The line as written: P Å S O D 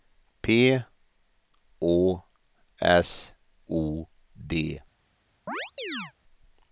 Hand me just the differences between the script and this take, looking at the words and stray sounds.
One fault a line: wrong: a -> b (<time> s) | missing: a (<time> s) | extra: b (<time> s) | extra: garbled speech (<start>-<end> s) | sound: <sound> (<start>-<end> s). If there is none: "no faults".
sound: chirp (5.5-6.1 s)